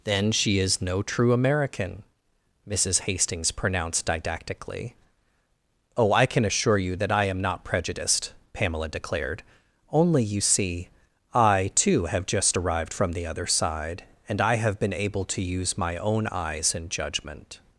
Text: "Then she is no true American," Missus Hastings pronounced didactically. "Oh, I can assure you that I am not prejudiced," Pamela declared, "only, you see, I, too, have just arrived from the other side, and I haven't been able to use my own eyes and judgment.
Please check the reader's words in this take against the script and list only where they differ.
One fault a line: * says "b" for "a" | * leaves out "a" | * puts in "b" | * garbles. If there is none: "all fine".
* says "have" for "haven't"